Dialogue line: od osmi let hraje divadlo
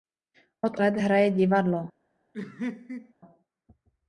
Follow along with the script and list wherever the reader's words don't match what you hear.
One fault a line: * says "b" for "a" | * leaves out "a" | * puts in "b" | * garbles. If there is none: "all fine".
* leaves out "osmi"